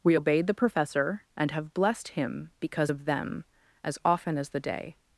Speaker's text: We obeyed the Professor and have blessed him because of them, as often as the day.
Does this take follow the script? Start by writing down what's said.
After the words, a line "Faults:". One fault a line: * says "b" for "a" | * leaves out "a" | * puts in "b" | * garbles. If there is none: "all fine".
We obeyed the Professor and have blessed him because of them, as often as the day.
Faults:
all fine